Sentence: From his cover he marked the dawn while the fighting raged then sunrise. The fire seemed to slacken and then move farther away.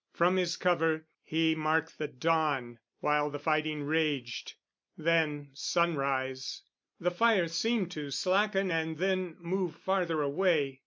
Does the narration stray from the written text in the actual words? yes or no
no